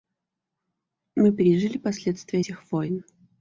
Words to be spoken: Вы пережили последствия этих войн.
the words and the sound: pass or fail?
fail